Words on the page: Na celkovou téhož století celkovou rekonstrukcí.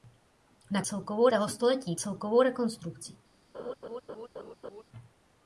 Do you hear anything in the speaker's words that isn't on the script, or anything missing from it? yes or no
no